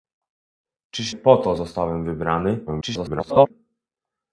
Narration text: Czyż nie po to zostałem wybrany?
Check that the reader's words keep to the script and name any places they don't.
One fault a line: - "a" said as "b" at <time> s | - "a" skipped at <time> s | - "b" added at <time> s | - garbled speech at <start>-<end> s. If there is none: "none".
- "nie" skipped at 1.1 s
- garbled speech at 2.7-3.5 s